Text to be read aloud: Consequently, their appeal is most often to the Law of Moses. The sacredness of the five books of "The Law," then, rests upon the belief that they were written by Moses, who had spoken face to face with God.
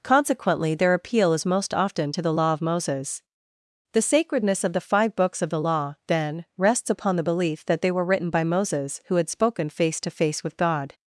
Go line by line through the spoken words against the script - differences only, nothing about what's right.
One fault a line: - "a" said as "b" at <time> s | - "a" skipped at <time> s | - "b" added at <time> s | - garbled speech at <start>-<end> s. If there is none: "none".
none